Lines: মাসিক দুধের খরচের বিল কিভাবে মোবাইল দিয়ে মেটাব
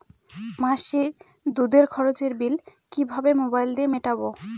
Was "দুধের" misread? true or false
false